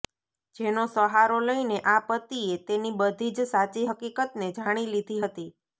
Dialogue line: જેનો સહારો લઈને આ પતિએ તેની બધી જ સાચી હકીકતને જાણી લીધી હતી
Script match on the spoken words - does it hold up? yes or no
yes